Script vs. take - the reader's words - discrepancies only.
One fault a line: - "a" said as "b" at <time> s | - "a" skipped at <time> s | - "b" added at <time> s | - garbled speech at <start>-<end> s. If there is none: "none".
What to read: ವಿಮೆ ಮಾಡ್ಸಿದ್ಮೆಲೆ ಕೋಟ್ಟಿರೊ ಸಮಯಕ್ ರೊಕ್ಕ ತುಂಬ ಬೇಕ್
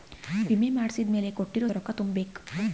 - "ಸಮಯಕ್" skipped at 1.7 s